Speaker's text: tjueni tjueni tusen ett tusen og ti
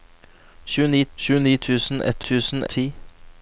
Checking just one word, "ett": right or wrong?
right